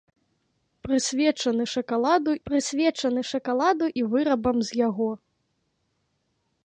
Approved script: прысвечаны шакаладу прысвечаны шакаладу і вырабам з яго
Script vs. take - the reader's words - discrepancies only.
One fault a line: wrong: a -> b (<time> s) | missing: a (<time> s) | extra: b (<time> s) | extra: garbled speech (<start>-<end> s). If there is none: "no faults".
no faults